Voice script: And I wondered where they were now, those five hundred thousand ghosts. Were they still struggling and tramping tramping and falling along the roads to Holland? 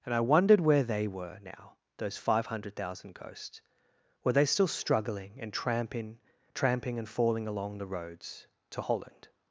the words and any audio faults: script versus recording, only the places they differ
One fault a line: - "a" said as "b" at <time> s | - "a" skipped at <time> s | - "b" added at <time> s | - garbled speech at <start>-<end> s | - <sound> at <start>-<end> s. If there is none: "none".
none